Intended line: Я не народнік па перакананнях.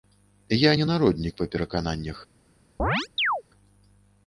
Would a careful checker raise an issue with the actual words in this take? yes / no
no